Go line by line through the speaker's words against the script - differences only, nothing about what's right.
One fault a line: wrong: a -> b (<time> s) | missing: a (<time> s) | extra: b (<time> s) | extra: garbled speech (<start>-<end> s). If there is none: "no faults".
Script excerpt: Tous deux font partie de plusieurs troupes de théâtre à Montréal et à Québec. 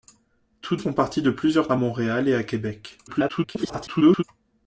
missing: deux (0.8 s)
missing: troupes de théâtre (1.7 s)
extra: garbled speech (3.1-4.2 s)